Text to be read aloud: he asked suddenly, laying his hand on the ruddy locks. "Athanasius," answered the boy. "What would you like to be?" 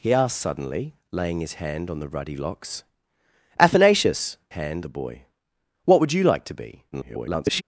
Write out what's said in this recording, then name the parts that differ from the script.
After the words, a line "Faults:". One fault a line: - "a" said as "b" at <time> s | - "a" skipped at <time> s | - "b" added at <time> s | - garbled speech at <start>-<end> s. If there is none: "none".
he asked suddenly, laying his hand on the ruddy locks. "Athanasius," hand the boy. "What would you like to be?" [garbled]
Faults:
- "answered" said as "hand" at 4.5 s
- garbled speech at 6.9-7.6 s